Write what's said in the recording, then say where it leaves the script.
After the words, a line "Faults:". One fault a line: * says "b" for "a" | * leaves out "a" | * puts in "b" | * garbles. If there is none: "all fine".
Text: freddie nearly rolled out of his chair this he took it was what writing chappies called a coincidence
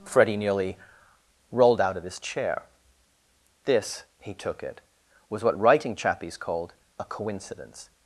freddie nearly rolled out of his chair this he took it was what writing chappies called a coincidence
Faults:
all fine